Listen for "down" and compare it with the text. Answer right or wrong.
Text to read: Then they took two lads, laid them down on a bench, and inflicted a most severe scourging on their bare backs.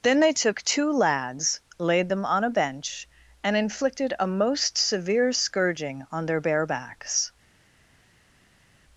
wrong